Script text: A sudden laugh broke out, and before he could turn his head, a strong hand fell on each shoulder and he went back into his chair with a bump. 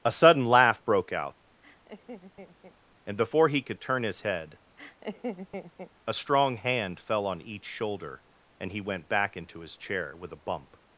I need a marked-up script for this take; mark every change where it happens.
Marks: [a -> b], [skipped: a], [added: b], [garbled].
A sudden laugh broke out, and before he could turn his head, a strong hand fell on each shoulder and he went back into his chair with a bump.